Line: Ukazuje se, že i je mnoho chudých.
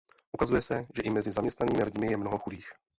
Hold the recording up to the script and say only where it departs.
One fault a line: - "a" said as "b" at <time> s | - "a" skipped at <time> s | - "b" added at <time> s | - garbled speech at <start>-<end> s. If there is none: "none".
- "mezi zaměstnanými lidmi" added at 1.1 s